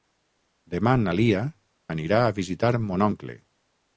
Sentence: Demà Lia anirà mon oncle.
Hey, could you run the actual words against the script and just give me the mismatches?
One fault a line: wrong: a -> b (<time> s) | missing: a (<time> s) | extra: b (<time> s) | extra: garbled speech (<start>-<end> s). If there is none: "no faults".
extra: na (1.0 s)
extra: a visitar (2.3 s)